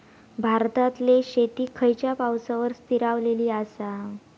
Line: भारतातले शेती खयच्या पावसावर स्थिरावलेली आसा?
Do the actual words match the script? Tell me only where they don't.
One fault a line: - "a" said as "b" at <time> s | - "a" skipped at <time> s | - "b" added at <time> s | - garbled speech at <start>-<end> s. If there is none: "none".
none